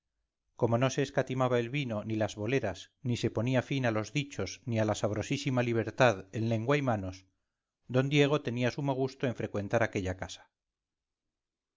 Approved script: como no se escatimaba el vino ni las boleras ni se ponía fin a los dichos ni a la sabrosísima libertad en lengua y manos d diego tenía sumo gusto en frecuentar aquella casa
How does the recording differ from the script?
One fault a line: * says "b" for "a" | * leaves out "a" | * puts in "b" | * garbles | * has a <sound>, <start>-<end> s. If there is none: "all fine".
all fine